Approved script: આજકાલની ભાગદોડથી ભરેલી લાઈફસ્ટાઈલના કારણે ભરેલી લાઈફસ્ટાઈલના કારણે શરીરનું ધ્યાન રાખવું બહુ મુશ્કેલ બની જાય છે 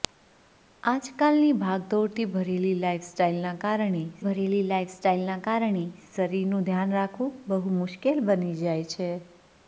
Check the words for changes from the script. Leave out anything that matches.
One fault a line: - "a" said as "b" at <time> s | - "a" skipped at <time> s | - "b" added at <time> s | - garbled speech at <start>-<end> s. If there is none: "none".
none